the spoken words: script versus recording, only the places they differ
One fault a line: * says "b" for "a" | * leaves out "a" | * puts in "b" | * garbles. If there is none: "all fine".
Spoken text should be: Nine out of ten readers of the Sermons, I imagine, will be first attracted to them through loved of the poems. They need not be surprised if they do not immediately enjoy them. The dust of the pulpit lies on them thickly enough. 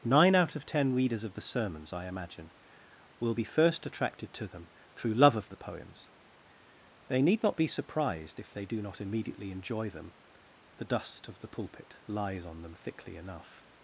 * says "love" for "loved"